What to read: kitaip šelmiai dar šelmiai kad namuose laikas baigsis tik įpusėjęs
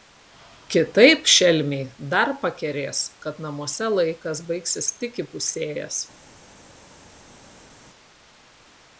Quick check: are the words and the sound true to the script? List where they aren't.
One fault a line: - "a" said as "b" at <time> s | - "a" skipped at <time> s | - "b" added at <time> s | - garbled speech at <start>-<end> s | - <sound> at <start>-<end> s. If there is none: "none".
- "šelmiai" said as "pakerės" at 2.5 s